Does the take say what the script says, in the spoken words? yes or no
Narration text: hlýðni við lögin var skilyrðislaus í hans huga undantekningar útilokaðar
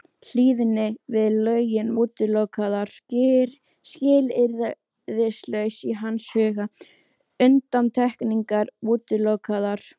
no